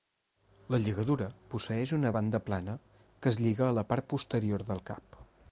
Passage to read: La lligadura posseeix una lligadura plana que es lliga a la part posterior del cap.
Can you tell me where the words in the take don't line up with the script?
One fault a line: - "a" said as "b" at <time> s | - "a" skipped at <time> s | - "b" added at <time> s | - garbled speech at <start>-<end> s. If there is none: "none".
- "lligadura" said as "banda" at 2.2 s